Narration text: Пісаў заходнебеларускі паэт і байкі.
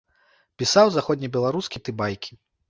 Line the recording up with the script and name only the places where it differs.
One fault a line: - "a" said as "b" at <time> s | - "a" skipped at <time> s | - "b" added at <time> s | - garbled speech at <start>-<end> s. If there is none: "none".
- "паэт" skipped at 1.9 s